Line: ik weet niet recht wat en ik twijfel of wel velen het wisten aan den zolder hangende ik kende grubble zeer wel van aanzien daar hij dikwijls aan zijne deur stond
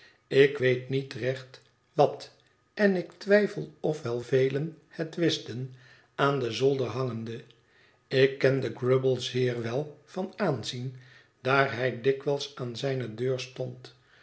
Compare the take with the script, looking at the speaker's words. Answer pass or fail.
pass